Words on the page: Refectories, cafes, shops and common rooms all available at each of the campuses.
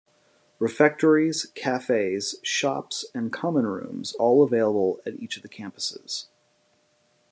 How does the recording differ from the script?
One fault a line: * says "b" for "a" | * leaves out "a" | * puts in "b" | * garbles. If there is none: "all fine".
all fine